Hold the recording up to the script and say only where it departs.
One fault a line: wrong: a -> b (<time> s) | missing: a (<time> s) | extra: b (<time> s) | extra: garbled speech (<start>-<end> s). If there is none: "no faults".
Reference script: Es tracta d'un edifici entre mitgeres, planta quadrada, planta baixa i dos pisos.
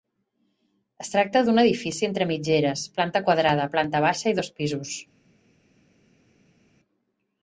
no faults